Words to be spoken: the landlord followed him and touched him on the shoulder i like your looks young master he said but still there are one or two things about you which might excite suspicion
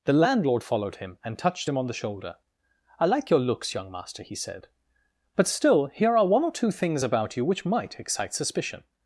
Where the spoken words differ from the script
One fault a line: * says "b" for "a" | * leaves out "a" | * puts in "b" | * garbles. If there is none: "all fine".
* says "here" for "there"